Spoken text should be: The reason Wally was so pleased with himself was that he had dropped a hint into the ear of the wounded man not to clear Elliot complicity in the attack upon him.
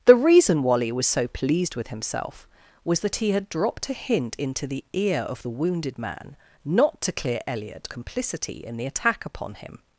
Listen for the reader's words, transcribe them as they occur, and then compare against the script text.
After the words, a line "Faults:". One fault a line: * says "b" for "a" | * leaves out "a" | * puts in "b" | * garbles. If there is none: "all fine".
The reason Wally was so pleased with himself was that he had dropped a hint into the ear of the wounded man not to clear Elliot complicity in the attack upon him.
Faults:
all fine